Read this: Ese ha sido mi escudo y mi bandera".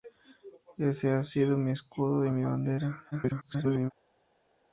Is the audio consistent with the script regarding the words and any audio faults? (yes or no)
no